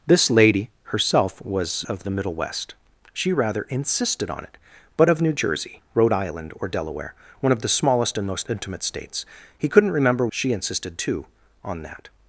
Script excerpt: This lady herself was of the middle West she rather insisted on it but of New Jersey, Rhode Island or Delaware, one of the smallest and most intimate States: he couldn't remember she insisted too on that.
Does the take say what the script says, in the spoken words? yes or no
yes